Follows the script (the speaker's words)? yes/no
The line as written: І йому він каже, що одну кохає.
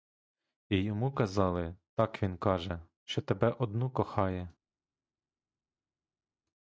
no